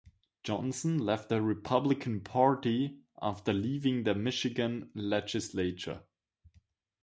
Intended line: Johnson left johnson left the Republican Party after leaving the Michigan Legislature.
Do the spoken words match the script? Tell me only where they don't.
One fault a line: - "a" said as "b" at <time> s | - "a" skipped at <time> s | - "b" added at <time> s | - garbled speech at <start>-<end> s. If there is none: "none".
- "johnson left" skipped at 1.3 s